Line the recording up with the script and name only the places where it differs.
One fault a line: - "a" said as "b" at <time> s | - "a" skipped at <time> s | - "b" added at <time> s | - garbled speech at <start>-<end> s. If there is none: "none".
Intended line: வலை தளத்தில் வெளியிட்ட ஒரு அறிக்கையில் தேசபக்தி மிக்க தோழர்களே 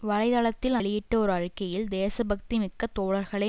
none